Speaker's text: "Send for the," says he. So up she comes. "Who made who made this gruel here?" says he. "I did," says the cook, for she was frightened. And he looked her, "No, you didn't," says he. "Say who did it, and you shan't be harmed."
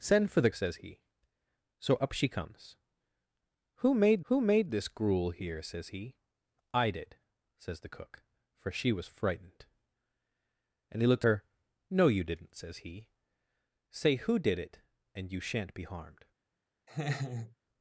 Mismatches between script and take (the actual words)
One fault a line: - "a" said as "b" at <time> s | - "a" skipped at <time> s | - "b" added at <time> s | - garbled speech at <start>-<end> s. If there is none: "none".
none